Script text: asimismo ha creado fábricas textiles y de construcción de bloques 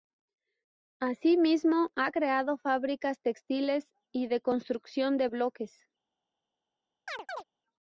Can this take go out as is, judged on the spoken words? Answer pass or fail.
pass